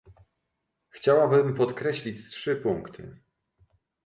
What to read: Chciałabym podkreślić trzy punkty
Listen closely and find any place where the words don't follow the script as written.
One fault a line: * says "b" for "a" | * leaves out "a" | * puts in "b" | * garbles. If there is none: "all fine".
all fine